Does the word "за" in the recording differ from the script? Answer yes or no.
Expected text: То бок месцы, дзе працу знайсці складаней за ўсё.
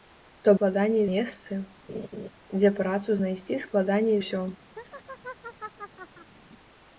yes